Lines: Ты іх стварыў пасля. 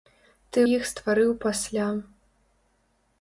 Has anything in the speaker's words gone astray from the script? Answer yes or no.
no